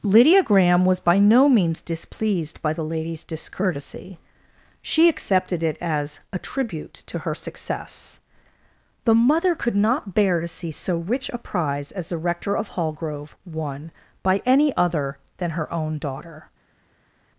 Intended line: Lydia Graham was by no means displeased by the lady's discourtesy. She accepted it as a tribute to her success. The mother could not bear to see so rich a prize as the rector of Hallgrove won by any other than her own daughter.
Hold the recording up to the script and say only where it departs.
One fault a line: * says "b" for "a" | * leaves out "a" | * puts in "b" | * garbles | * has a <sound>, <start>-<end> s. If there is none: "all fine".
all fine